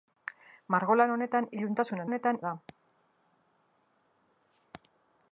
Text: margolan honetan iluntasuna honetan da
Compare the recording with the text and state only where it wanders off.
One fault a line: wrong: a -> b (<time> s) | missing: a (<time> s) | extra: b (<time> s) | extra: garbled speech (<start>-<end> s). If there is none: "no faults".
no faults